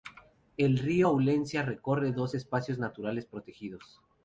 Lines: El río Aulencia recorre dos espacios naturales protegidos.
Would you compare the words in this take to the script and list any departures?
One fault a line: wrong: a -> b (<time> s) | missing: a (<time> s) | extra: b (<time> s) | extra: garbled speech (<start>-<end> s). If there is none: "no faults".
no faults